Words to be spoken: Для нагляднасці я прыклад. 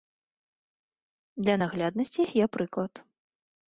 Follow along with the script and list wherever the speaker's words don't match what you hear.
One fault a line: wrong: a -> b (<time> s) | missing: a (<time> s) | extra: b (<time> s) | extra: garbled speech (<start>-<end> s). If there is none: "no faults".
no faults